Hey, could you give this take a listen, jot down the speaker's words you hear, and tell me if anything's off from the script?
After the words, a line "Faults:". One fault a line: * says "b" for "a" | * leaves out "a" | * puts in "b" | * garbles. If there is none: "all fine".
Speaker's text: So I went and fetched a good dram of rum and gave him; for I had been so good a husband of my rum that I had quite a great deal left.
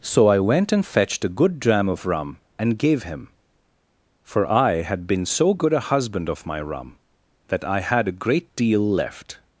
So I went and fetched a good dram of rum and gave him; for I had been so good a husband of my rum that I had a great deal left.
Faults:
* leaves out "quite"